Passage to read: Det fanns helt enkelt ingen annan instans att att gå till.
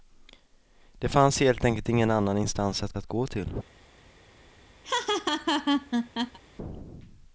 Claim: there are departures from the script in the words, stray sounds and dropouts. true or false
true